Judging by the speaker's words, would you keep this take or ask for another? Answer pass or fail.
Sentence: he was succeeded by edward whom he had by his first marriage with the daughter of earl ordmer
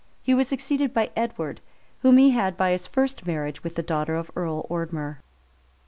pass